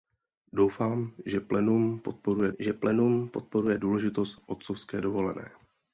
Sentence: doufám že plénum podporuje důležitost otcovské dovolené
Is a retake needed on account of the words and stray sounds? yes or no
yes